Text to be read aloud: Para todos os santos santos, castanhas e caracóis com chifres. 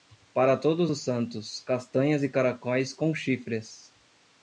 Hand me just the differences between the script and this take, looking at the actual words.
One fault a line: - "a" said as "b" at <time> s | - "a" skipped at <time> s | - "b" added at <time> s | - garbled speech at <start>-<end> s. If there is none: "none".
- "santos" skipped at 1.6 s